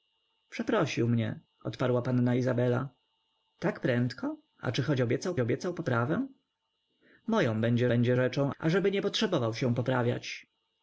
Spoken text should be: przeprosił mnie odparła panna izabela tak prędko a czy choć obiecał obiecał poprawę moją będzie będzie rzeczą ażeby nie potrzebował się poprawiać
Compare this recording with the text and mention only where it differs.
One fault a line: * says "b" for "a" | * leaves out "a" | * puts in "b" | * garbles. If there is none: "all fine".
all fine